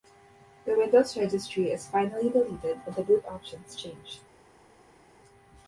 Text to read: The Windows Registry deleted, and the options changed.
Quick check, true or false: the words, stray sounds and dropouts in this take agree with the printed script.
false